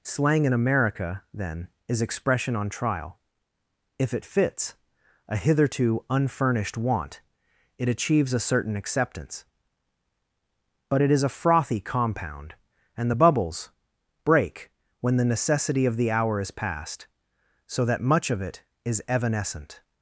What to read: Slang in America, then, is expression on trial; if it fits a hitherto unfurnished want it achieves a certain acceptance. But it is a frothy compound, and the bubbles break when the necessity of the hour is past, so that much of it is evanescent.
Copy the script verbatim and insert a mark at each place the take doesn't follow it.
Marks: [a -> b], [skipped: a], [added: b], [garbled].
Slang in America, then, is expression on trial; if it fits a hitherto unfurnished want it achieves a certain acceptance. But it is a frothy compound, and the bubbles break when the necessity of the hour is past, so that much of it is evanescent.